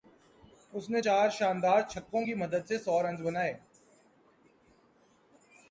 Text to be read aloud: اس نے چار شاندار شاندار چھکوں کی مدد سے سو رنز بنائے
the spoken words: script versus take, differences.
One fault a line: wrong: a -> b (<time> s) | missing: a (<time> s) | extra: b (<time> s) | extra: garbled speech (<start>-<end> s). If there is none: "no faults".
missing: شاندار (1.8 s)